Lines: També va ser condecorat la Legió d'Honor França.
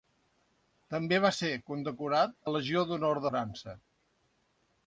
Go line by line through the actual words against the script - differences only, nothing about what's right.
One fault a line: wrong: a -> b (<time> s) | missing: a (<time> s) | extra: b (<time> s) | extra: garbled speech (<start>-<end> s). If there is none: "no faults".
no faults